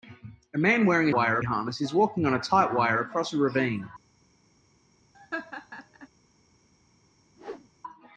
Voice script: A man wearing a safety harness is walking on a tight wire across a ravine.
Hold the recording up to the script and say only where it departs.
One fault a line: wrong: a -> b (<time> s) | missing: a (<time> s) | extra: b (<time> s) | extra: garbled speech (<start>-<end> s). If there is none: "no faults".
wrong: safety -> wire (1.1 s)